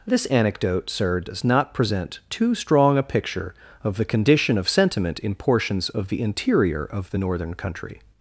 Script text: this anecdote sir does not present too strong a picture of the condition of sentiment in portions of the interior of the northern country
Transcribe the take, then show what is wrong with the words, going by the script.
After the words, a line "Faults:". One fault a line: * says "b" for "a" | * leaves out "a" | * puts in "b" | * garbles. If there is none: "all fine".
this anecdote sir does not present too strong a picture of the condition of sentiment in portions of the interior of the northern country
Faults:
all fine